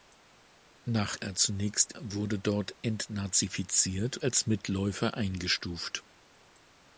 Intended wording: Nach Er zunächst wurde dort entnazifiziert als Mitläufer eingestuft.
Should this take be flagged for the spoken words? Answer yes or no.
no